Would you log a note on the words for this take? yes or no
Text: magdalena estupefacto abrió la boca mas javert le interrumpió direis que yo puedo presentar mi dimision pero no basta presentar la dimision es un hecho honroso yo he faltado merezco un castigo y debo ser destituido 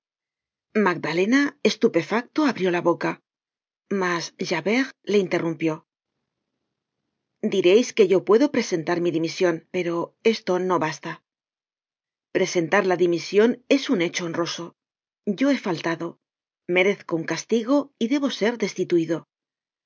yes